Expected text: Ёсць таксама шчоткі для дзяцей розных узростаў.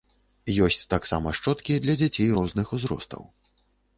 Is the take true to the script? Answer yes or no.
yes